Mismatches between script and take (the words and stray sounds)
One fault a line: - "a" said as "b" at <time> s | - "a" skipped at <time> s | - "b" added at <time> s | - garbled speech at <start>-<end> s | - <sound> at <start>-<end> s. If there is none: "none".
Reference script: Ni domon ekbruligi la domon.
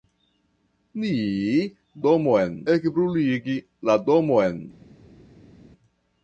none